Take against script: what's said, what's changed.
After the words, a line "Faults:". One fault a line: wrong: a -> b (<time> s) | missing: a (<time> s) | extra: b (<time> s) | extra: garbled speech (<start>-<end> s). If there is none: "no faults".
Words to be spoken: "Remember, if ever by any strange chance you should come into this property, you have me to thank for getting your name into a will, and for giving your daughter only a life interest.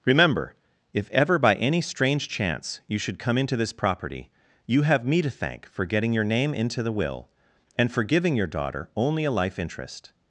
"Remember, if ever by any strange chance you should come into this property, you have me to thank for getting your name into the will, and for giving your daughter only a life interest.
Faults:
wrong: a -> the (6.8 s)